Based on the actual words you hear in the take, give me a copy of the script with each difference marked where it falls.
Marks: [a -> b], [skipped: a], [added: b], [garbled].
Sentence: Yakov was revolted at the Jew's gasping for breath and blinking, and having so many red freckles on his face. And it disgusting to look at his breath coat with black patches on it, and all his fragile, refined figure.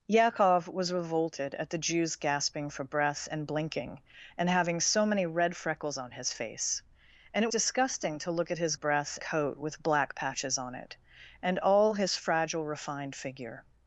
Yakov was revolted at the Jew's gasping for breath and blinking, and having so many red freckles on his face. And it disgusting to look at his breath coat with black patches on it, and all his fragile, refined figure.